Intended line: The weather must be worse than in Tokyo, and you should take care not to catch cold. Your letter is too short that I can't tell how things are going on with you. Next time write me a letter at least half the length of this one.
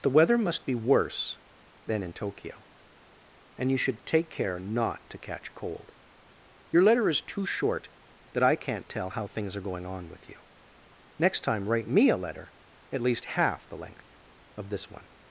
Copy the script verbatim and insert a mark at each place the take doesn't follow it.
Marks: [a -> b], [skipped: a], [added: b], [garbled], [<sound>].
The weather must be worse than in Tokyo, and you should take care not to catch cold. Your letter is too short that I can't tell how things are going on with you. Next time write me a letter at least half the length of this one.